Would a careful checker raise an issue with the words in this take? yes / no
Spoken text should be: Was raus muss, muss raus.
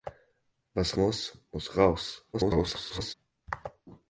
yes